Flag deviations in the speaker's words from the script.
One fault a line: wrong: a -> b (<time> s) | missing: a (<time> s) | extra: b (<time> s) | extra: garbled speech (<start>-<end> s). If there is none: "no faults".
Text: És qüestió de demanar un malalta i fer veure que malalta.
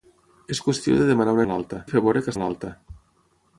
no faults